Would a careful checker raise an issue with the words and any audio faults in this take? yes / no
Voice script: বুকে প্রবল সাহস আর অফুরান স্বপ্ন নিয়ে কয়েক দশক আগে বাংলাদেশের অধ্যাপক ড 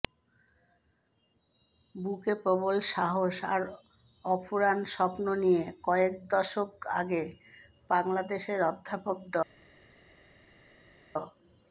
no